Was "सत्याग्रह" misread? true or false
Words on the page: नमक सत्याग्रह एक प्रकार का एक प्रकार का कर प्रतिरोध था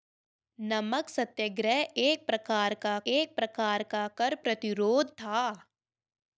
false